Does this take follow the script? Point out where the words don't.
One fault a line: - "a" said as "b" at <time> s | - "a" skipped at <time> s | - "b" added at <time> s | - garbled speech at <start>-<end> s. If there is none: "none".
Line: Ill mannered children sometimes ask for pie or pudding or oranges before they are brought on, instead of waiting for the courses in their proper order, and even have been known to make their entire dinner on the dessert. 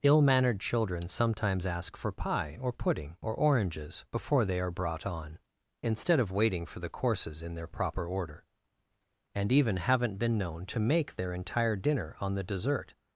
- "have" said as "haven't" at 9.8 s